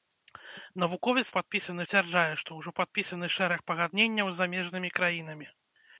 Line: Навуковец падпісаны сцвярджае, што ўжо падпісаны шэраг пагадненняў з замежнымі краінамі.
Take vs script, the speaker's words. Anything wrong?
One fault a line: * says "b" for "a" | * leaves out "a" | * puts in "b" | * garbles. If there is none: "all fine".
all fine